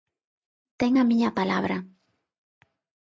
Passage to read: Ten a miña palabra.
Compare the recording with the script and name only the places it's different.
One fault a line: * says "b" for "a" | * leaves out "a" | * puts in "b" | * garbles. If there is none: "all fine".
all fine